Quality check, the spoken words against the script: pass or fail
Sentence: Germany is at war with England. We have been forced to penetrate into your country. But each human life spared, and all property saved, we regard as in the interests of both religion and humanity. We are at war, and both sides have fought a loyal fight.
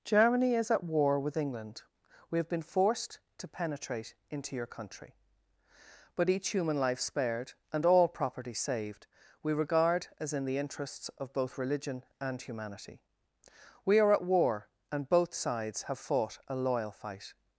pass